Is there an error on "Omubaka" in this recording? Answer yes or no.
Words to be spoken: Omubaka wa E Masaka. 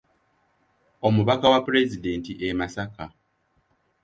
no